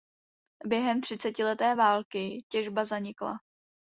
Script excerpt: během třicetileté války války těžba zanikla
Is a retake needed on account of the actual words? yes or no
yes